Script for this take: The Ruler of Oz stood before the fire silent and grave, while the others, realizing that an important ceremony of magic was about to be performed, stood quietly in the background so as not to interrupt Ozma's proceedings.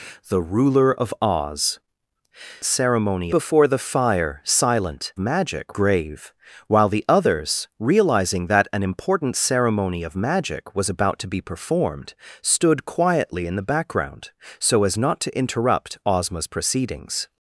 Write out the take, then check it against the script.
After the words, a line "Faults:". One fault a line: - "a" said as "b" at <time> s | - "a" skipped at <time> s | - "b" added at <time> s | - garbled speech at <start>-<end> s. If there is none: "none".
The Ruler of Oz ceremony before the fire silent magic grave, while the others, realizing that an important ceremony of magic was about to be performed, stood quietly in the background so as not to interrupt Ozma's proceedings.
Faults:
- "stood" said as "ceremony" at 2.6 s
- "and" said as "magic" at 5.2 s